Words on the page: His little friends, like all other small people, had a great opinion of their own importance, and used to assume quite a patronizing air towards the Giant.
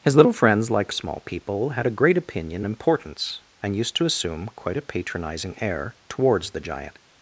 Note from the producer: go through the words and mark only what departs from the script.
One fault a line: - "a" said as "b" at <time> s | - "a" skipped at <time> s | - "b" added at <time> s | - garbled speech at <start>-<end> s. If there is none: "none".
- "all other" skipped at 0.9 s
- "of their own" skipped at 2.7 s